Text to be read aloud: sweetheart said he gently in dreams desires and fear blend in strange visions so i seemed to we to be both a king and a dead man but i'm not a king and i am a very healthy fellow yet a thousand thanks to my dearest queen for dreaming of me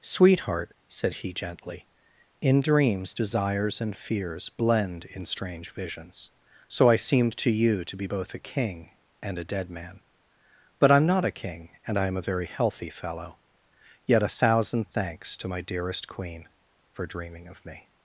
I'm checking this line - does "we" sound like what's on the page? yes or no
no